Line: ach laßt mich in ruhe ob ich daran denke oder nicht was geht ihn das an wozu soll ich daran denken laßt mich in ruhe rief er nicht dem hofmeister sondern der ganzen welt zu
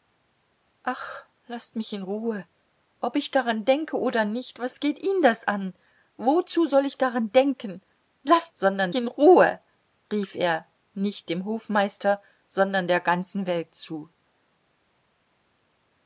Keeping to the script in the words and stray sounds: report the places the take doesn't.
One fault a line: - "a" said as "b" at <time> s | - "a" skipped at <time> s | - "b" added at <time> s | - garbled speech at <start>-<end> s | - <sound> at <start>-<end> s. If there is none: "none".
- "mich" said as "sondern" at 8.5 s